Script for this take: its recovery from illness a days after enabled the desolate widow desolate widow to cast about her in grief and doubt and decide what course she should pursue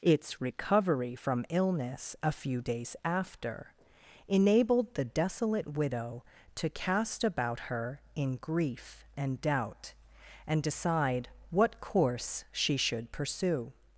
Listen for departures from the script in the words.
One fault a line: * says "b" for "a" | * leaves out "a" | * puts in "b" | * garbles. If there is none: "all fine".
* puts in "few"
* leaves out "desolate widow"